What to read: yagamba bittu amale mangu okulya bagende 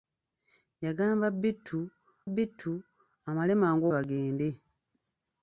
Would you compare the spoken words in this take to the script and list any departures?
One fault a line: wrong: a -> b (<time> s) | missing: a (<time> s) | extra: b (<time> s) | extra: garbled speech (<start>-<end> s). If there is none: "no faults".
extra: bittu (2.3 s)
missing: okulya (3.8 s)